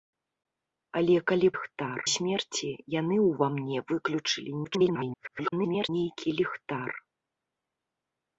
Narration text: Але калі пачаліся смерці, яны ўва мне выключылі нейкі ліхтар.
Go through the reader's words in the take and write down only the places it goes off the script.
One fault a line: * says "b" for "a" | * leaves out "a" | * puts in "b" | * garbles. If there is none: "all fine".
* says "ліхтар" for "пачаліся"
* garbles